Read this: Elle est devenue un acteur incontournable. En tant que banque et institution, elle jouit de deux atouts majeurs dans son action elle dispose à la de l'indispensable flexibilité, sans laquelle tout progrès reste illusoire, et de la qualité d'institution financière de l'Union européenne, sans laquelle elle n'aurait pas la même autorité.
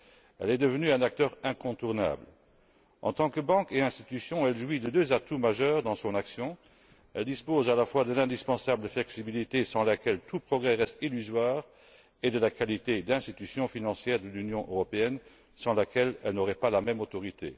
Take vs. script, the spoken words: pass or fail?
fail